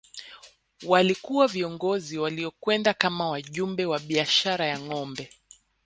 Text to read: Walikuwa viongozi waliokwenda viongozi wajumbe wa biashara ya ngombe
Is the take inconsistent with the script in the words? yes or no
yes